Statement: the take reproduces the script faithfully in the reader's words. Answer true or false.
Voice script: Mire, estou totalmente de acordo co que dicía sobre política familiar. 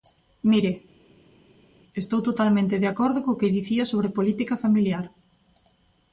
true